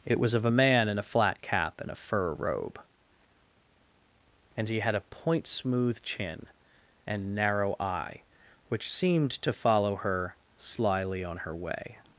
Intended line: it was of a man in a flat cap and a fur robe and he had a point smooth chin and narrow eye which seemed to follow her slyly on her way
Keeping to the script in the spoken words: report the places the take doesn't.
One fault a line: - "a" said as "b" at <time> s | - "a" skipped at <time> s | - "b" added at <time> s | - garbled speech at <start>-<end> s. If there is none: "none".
none